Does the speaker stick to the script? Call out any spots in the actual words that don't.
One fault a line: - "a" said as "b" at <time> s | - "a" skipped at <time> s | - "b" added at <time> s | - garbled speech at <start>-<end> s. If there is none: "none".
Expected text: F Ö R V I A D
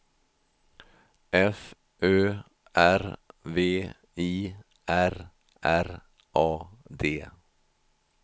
- "R R" added at 4.9 s